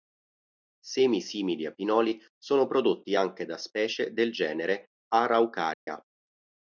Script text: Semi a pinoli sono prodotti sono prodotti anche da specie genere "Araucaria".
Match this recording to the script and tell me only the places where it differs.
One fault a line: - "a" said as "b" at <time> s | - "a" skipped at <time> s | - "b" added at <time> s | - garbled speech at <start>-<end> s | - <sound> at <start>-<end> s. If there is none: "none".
- "simili" added at 1.2 s
- "sono prodotti" skipped at 3.2 s
- "del" added at 4.1 s
- dropout at 5.7-5.9 s